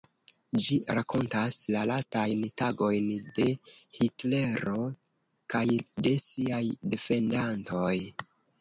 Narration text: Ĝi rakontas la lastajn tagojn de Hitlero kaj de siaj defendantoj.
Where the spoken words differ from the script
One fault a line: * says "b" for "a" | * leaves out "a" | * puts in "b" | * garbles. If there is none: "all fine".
all fine